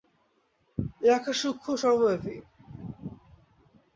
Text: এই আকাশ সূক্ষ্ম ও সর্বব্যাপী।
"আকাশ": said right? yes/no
yes